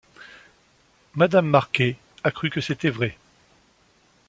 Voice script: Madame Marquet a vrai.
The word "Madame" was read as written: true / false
true